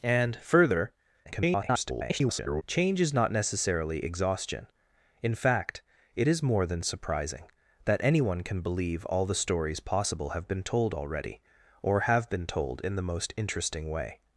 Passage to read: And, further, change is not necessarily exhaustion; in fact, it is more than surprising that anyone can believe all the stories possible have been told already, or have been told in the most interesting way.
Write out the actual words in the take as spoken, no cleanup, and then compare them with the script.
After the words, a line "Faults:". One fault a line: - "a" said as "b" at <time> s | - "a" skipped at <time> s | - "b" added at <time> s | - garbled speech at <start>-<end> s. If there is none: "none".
And, further, [garbled] change is not necessarily exhaustion; in fact, it is more than surprising that anyone can believe all the stories possible have been told already, or have been told in the most interesting way.
Faults:
- garbled speech at 1.2-2.6 s